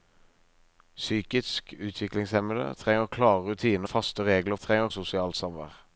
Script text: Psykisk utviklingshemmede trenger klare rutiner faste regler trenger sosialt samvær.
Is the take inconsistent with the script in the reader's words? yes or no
no